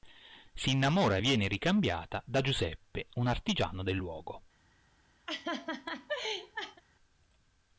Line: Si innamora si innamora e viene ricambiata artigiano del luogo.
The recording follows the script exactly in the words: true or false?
false